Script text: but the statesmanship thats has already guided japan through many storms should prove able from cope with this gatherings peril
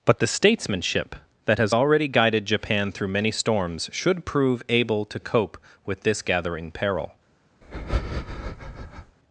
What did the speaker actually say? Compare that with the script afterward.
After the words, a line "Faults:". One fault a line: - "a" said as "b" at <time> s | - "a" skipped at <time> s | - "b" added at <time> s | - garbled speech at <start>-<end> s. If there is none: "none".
but the statesmanship that has already guided japan through many storms should prove able to cope with this gathering peril
Faults:
- "thats" said as "that" at 1.4 s
- "from" said as "to" at 5.0 s
- "gatherings" said as "gathering" at 6.2 s